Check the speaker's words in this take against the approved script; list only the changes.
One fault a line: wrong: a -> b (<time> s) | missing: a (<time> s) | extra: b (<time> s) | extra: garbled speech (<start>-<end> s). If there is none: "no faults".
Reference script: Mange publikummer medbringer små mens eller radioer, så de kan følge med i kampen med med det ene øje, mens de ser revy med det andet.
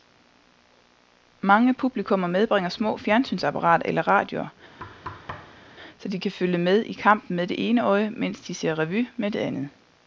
wrong: mens -> fjernsynsapparater (3.0 s)
missing: med (7.5 s)